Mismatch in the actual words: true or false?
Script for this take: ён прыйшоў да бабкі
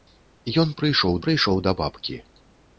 true